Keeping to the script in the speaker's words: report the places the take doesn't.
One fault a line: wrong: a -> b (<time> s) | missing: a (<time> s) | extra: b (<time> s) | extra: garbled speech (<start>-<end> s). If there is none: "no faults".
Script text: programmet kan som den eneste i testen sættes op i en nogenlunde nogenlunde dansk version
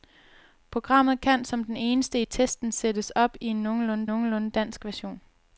no faults